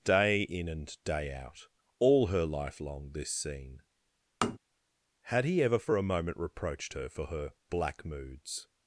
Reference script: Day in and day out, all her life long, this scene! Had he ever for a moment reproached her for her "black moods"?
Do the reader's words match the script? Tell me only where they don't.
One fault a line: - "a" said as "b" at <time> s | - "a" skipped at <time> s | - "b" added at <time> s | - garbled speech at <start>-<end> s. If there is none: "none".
none